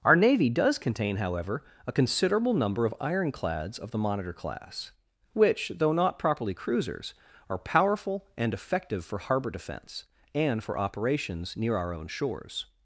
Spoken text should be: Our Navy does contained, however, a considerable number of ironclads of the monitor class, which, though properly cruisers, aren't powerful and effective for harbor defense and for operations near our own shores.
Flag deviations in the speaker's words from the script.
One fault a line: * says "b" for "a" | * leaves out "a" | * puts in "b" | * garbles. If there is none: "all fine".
* says "contain" for "contained"
* puts in "not"
* says "are" for "aren't"